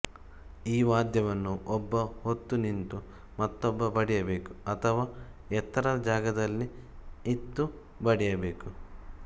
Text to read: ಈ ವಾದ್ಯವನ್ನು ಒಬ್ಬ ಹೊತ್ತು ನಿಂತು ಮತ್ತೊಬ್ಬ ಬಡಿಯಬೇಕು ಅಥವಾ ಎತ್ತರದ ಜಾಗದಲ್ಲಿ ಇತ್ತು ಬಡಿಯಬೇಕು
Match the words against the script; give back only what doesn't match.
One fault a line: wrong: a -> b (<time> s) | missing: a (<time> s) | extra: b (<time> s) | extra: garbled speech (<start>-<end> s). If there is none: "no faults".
no faults